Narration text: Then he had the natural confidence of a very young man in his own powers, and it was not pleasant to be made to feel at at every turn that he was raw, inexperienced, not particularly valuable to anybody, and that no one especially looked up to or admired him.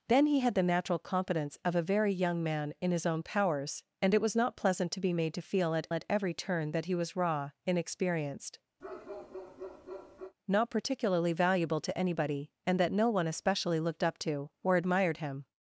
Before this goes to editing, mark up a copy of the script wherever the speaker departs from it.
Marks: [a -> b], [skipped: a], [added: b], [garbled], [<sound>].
Then he had the natural confidence of a very young man in his own powers, and it was not pleasant to be made to feel at at every turn that he was raw, inexperienced, [bark] not particularly valuable to anybody, and that no one especially looked up to or admired him.